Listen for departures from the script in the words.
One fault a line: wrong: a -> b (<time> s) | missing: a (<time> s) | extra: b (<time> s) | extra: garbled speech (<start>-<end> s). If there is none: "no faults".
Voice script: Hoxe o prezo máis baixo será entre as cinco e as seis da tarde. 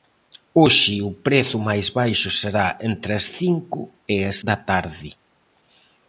missing: seis (4.4 s)